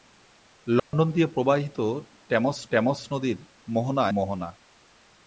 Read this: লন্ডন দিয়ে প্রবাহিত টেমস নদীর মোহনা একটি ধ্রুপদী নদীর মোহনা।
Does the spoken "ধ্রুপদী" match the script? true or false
false